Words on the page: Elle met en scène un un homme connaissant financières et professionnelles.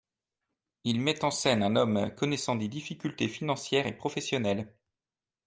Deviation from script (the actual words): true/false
true